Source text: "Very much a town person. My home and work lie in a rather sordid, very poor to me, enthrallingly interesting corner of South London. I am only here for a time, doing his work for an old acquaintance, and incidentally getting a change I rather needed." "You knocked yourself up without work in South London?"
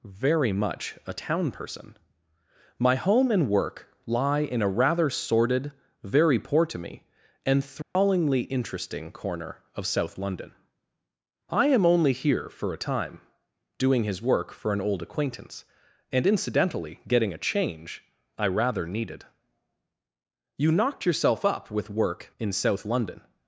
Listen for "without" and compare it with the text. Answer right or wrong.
wrong